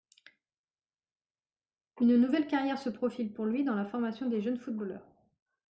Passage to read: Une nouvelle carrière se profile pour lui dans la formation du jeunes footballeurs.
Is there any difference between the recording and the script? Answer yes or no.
yes